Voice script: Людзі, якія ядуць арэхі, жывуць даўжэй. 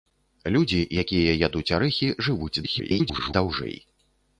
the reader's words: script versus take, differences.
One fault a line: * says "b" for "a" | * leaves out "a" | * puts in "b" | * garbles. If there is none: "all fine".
* garbles